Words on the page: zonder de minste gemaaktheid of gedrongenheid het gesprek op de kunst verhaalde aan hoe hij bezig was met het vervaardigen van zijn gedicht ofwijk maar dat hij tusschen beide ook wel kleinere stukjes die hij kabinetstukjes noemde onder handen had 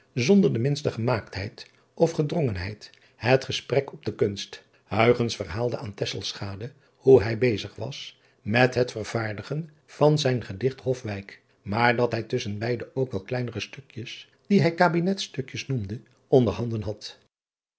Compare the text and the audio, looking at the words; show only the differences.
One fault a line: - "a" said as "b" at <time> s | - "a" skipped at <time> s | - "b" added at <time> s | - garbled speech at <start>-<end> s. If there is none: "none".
none